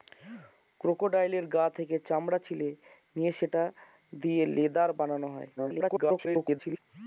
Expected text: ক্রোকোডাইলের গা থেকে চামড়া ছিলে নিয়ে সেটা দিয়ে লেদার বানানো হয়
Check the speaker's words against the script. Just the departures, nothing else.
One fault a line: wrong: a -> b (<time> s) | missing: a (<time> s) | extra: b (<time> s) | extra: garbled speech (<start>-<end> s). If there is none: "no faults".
extra: garbled speech (5.6-6.8 s)